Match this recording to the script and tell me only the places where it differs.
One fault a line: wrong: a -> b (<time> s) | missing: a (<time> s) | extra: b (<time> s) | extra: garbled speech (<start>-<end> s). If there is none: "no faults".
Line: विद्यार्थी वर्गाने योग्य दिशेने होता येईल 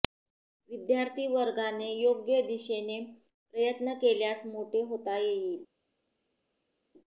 extra: प्रयत्न केल्यास मोठे (3.5 s)